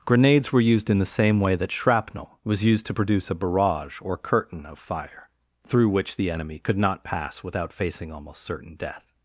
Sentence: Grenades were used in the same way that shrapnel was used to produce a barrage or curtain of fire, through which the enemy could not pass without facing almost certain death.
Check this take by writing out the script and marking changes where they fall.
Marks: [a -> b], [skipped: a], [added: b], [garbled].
Grenades were used in the same way that shrapnel was used to produce a barrage or curtain of fire, through which the enemy could not pass without facing almost certain death.